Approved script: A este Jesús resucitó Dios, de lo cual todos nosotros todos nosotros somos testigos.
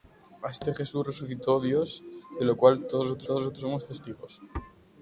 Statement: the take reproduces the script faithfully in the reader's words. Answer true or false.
true